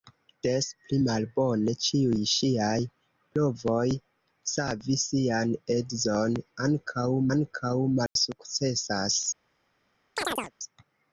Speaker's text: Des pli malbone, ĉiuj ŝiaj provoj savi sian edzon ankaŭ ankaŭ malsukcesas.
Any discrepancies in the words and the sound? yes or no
yes